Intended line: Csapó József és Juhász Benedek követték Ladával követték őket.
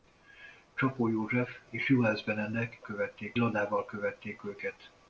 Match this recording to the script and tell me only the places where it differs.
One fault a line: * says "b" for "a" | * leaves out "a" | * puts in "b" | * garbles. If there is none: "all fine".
all fine